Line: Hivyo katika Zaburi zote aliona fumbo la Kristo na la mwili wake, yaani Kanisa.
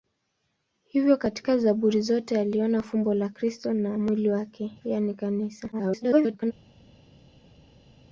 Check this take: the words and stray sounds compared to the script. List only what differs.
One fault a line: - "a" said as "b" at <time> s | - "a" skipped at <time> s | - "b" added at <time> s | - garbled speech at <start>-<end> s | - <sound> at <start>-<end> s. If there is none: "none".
- "la" skipped at 4.0 s
- garbled speech at 5.7-6.5 s